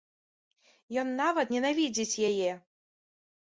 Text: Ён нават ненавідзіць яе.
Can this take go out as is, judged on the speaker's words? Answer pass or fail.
pass